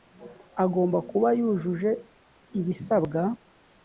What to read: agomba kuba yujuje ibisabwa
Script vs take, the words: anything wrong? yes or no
no